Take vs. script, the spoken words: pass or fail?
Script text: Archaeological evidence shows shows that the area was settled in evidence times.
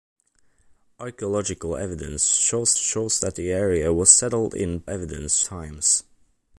pass